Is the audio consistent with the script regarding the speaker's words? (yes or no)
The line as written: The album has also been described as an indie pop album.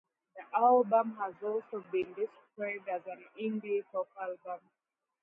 yes